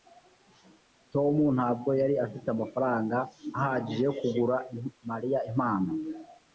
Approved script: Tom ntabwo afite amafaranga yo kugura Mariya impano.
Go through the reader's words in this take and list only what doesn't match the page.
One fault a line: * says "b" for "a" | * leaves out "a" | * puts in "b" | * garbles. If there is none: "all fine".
* puts in "yari"
* puts in "ahagije"